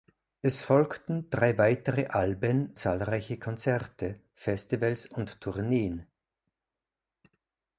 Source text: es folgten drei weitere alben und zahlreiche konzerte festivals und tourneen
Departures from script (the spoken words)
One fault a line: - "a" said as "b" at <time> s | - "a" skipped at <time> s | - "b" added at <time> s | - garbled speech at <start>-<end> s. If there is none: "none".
- "und" skipped at 2.7 s